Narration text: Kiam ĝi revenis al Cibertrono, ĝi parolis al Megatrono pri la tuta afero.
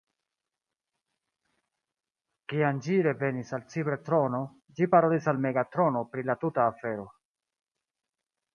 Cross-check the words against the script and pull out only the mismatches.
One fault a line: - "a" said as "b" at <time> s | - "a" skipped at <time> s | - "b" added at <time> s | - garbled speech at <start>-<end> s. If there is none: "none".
none